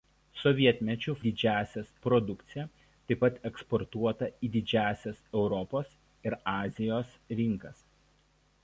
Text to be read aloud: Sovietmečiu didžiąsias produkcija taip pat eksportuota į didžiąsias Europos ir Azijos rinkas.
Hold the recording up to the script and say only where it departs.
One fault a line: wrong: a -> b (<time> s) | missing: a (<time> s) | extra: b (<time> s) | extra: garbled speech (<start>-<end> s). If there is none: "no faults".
no faults